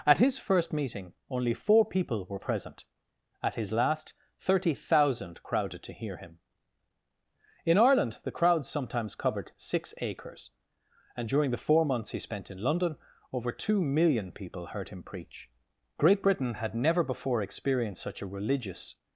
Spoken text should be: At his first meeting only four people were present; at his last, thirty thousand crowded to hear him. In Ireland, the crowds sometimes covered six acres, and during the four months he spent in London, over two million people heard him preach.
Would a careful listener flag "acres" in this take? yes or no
no